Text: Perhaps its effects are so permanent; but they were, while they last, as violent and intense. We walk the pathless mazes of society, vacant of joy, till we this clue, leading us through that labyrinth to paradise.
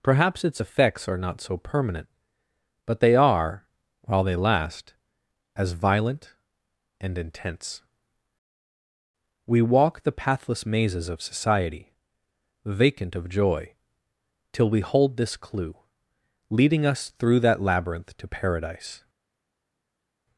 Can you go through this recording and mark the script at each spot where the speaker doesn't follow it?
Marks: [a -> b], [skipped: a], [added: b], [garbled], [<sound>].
Perhaps its effects are [added: not] so permanent; but they [were, -> are] while they last, as violent and intense. We walk the pathless mazes of society, vacant of joy, till we [added: hold] this clue, leading us through that labyrinth to paradise.